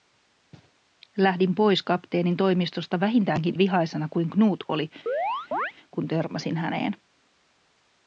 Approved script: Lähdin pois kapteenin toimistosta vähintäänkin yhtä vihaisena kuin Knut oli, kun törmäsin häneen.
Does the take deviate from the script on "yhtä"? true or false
true